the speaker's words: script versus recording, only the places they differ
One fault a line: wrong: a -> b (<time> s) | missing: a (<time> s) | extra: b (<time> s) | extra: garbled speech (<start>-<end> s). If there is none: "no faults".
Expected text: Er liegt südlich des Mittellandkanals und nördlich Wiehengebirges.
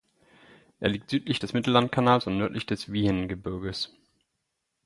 extra: des (2.6 s)